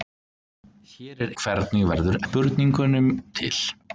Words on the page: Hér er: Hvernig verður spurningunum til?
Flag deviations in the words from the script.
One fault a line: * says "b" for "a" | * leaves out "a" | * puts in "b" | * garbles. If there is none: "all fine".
all fine